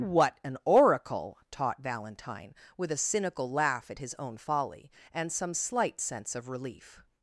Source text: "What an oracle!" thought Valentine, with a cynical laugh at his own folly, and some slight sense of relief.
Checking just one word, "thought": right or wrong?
wrong